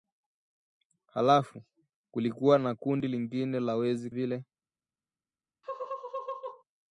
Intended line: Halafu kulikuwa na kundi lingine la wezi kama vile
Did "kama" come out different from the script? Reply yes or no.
yes